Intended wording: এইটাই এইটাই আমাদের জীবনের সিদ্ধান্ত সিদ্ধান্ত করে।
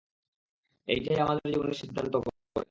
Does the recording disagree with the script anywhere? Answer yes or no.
yes